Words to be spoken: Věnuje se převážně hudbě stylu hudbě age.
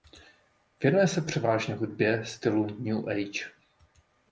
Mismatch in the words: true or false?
true